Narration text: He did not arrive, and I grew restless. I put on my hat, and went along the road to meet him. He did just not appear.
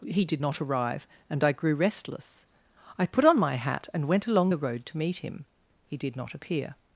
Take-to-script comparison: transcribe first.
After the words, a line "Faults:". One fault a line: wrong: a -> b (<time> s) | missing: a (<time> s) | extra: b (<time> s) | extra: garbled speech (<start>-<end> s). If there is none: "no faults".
He did not arrive, and I grew restless. I put on my hat, and went along the road to meet him. He did not appear.
Faults:
missing: just (6.2 s)